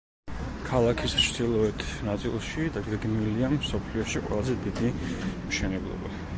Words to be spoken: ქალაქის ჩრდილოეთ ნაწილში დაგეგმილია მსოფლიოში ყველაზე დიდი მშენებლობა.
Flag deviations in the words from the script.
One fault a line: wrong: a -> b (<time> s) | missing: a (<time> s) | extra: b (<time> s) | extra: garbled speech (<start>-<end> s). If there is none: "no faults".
no faults